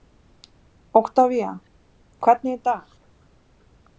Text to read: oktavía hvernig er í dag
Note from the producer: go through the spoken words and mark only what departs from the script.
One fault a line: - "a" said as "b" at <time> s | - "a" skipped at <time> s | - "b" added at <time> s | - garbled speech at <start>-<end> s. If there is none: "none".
none